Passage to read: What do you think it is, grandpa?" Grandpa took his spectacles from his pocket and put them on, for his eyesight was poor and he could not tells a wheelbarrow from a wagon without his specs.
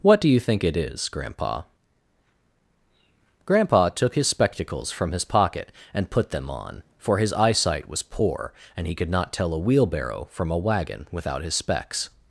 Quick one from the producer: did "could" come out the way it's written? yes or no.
yes